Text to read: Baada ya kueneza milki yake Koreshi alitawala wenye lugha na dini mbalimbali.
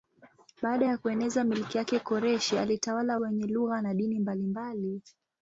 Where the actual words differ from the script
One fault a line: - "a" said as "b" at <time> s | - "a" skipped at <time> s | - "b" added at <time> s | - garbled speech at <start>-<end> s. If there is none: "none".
none